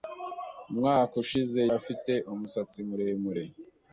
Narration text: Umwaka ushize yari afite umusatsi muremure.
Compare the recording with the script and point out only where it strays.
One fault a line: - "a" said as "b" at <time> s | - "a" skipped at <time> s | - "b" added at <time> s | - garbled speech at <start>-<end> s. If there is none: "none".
- "yari" skipped at 1.6 s